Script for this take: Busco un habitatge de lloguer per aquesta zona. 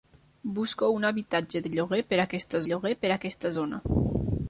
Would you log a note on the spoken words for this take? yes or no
yes